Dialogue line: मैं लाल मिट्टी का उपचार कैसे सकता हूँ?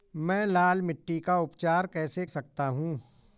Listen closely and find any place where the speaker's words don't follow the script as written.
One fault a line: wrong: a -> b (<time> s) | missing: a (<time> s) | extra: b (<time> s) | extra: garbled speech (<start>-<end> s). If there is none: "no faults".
no faults